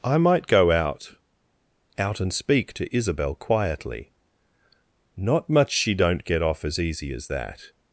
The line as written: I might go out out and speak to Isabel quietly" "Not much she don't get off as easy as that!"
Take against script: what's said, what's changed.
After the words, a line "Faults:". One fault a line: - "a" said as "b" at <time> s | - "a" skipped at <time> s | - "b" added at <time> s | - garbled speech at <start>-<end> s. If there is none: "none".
I might go out out and speak to Isabel quietly" "Not much she don't get off as easy as that!"
Faults:
none